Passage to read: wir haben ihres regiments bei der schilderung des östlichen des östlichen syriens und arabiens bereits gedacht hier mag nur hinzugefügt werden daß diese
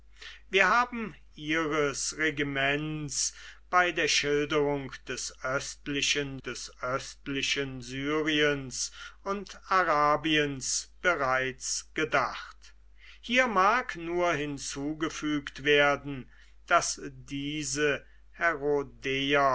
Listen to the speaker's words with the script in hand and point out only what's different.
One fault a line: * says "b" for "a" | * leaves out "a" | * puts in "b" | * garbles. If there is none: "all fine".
all fine